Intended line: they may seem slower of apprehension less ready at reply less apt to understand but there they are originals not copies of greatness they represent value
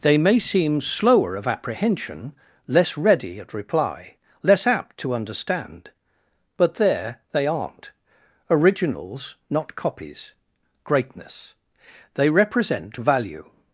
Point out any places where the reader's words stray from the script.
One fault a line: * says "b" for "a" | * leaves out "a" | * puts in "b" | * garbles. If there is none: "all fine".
* says "aren't" for "are"
* leaves out "of"